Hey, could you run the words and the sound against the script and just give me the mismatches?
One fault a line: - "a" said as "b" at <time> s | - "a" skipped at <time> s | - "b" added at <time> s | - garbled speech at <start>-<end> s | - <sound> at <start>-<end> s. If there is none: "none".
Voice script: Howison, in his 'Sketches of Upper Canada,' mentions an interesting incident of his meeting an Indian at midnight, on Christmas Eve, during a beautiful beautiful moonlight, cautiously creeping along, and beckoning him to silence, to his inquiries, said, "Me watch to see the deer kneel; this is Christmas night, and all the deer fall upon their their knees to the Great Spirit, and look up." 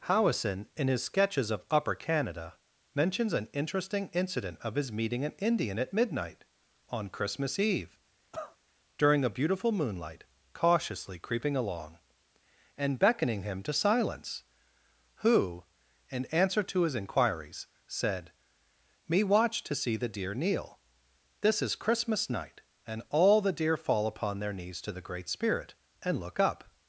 - cough at 8.3-8.6 s
- "beautiful" skipped at 9.7 s
- "who in answer" added at 15.2 s
- "their" skipped at 24.5 s